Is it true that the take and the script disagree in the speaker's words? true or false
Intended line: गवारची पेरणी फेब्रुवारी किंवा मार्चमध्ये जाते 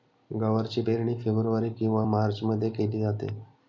true